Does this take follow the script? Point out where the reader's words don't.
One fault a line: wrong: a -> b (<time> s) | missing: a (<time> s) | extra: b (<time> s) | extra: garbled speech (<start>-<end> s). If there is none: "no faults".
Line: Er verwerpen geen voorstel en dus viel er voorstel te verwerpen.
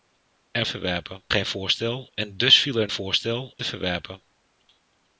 no faults